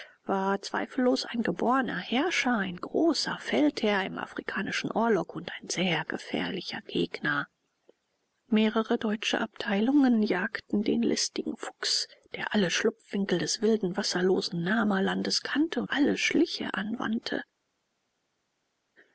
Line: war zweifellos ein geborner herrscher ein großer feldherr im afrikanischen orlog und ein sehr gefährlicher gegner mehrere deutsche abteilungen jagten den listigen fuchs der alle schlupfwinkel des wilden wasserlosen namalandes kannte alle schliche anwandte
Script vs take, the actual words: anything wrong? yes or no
no